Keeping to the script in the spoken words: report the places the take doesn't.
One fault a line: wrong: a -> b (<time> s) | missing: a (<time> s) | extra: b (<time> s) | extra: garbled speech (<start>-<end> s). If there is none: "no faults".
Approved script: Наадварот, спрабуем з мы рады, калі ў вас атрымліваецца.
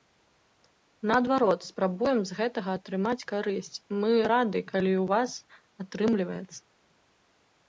extra: гэтага атрымаць карысць (2.4 s)